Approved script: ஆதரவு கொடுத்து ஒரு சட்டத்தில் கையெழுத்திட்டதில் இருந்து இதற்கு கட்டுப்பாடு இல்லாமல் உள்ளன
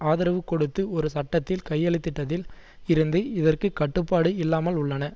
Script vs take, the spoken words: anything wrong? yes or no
no